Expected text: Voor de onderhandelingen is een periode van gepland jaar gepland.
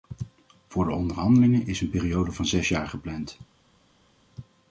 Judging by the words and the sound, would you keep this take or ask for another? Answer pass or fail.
fail